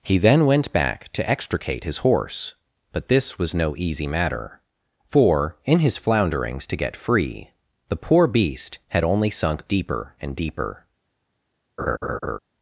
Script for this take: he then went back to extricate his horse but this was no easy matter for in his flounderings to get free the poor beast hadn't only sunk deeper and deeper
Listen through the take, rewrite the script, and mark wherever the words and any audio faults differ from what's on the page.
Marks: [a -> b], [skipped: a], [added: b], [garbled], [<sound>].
he then went back to extricate his horse but this was no easy matter for in his flounderings to get free the poor beast [hadn't -> had] only sunk deeper and deeper [laugh]